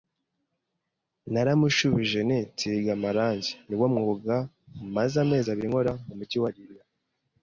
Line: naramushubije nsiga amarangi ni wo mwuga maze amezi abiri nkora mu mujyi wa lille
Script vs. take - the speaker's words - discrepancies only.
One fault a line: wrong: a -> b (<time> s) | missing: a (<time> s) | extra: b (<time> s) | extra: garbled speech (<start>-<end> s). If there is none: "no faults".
extra: nti (2.3 s)